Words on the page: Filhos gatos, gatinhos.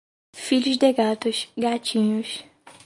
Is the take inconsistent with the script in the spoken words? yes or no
yes